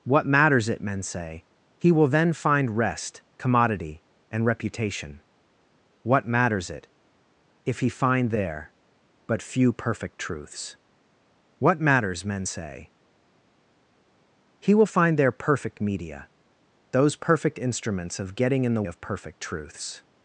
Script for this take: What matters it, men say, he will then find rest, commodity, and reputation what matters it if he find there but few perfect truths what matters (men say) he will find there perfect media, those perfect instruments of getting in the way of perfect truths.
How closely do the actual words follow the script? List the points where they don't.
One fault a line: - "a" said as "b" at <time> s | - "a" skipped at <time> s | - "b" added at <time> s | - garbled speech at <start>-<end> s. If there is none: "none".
- "way" skipped at 18.8 s